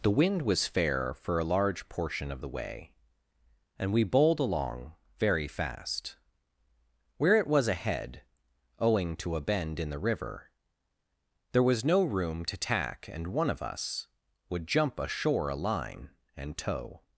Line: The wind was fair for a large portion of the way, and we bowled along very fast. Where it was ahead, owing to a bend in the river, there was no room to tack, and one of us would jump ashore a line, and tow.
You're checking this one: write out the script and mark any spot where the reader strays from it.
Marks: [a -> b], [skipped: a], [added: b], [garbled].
The wind was fair for a large portion of the way, and we bowled along very fast. Where it was ahead, owing to a bend in the river, there was no room to tack, and one of us would jump ashore a line, and tow.